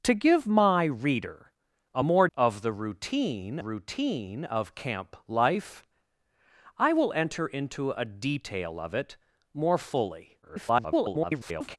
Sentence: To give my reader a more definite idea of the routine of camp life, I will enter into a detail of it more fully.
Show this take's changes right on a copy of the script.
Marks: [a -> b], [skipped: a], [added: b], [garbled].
To give my reader a more [skipped: definite idea] of the routine [added: routine] of camp life, I will enter into a detail of it more fully. [garbled]